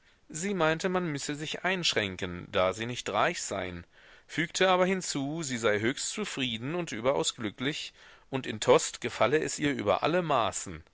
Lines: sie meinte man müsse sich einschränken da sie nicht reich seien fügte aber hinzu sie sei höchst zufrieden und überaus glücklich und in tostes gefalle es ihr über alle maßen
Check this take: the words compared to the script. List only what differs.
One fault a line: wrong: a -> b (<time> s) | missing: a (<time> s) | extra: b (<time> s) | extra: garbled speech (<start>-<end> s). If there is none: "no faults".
no faults